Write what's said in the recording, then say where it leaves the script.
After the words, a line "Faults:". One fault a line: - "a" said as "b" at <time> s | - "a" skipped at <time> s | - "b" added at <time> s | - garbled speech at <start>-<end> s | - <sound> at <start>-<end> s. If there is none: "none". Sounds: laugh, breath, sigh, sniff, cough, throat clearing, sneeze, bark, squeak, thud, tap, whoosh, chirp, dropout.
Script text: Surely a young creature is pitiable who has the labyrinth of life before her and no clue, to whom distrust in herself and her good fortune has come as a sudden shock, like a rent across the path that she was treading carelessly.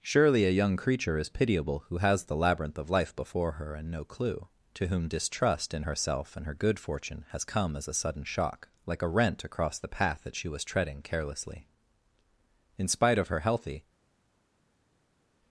Surely a young creature is pitiable who has the labyrinth of life before her and no clue, to whom distrust in herself and her good fortune has come as a sudden shock, like a rent across the path that she was treading carelessly. In spite of her healthy
Faults:
- "In spite of her healthy" added at 12.8 s